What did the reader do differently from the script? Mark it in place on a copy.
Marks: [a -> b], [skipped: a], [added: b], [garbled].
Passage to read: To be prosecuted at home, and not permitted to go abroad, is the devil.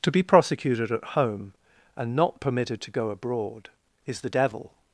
To be prosecuted at home, and not permitted to go abroad, is the devil.